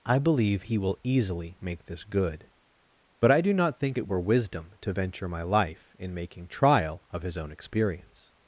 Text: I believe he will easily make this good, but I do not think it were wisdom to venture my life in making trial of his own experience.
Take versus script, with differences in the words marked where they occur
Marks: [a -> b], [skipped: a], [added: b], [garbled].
I believe he will easily make this good, but I do not think it were wisdom to venture my life in making trial of his own experience.